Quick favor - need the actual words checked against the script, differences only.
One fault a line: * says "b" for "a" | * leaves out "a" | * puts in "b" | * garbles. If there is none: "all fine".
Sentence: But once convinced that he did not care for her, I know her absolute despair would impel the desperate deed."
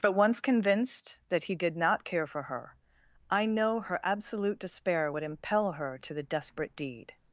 * puts in "her to"